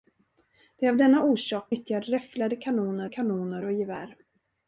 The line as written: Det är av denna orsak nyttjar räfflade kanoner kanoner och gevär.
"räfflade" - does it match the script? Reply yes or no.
yes